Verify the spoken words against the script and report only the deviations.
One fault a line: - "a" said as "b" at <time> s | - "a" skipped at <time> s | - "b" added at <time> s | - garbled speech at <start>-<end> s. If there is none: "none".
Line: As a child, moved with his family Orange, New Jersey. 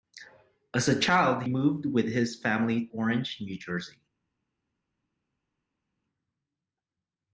none